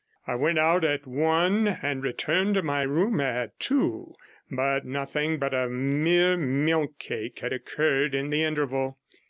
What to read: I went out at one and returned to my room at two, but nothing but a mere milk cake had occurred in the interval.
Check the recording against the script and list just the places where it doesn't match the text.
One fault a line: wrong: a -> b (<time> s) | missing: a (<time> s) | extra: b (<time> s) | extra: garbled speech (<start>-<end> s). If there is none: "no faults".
no faults